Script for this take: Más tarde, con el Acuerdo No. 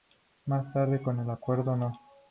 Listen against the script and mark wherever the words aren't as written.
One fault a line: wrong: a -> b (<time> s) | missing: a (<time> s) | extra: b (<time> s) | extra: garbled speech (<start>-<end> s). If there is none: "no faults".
no faults